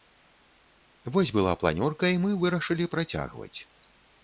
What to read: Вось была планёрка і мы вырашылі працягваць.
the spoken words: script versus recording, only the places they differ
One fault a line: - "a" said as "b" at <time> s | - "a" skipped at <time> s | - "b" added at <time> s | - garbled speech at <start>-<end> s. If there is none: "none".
none